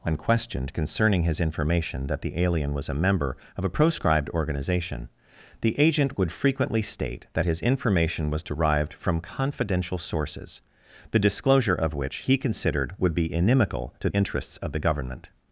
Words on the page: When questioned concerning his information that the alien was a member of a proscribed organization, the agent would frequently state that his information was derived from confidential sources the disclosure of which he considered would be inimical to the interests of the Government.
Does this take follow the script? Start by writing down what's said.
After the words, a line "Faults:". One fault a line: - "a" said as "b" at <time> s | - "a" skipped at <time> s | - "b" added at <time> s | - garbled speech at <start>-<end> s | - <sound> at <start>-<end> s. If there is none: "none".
When questioned concerning his information that the alien was a member of a proscribed organization, the agent would frequently state that his information was derived from confidential sources the disclosure of which he considered would be inimical to interests of the Government.
Faults:
- "the" skipped at 14.1 s